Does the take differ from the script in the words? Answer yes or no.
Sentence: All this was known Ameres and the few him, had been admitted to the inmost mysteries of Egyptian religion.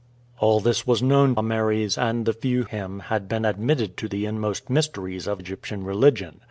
no